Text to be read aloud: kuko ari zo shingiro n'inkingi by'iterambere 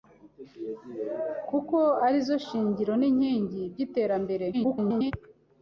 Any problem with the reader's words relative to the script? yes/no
yes